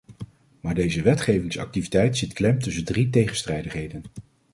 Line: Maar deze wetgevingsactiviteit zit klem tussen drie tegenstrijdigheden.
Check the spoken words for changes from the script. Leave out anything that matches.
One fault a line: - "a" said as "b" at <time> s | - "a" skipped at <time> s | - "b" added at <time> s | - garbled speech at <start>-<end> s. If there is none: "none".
none